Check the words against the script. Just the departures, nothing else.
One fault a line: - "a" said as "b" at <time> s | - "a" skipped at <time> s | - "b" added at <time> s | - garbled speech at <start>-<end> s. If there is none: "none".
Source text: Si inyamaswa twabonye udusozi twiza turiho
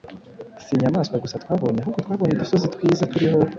- "gusa twabonye ahubwo" added at 1.2 s